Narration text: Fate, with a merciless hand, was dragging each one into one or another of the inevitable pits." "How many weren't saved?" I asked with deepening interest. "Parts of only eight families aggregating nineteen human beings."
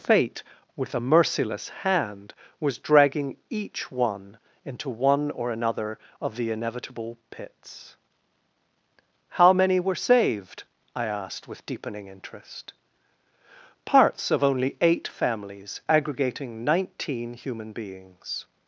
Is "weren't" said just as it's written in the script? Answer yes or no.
no